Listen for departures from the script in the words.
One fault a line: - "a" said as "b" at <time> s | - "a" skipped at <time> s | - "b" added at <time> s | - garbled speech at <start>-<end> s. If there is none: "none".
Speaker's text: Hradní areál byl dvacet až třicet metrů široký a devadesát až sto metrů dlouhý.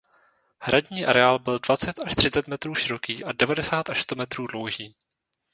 none